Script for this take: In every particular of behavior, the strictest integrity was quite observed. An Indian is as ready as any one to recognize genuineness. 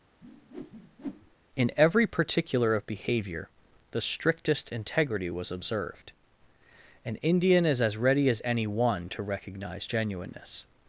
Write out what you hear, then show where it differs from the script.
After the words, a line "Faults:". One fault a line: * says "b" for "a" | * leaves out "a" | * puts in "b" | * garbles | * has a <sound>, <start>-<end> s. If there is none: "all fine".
In every particular of behavior, the strictest integrity was observed. An Indian is as ready as any one to recognize genuineness.
Faults:
* has a whoosh, 0.2-1.4 s
* leaves out "quite"